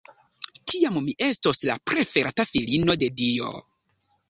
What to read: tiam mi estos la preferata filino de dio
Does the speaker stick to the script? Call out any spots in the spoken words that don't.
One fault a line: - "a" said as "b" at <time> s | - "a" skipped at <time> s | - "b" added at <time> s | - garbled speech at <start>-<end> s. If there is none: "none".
none